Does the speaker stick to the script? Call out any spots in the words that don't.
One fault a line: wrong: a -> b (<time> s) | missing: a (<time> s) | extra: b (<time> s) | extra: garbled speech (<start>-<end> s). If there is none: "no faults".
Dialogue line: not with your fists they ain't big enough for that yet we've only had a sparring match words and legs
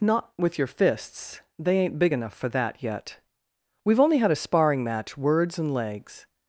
no faults